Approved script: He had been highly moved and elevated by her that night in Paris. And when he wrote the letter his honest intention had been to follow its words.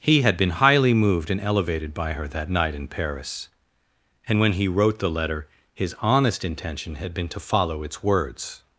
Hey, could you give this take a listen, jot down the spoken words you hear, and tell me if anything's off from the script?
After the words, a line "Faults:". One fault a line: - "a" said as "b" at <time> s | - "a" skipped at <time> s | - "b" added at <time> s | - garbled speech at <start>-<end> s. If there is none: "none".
He had been highly moved and elevated by her that night in Paris. And when he wrote the letter his honest intention had been to follow its words.
Faults:
none